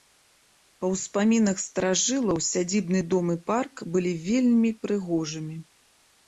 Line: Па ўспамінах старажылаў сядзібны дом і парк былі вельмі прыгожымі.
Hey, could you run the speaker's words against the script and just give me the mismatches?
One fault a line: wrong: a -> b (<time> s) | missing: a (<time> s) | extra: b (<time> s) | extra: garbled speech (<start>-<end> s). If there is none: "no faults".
no faults